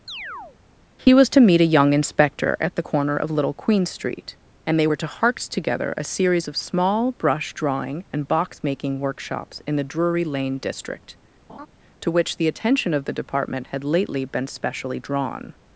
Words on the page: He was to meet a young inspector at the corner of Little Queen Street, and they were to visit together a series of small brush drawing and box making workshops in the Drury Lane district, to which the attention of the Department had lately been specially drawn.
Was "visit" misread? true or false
true